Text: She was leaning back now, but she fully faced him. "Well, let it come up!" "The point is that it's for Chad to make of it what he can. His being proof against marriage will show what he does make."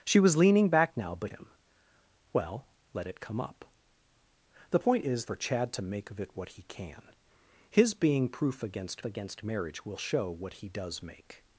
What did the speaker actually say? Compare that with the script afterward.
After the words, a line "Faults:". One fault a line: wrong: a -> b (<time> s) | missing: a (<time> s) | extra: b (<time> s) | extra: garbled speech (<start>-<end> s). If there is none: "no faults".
She was leaning back now, but him. "Well, let it come up!" "The point is for Chad to make of it what he can. His being proof against against marriage will show what he does make."
Faults:
missing: she fully faced (1.3 s)
missing: that it's (5.3 s)
extra: against (9.0 s)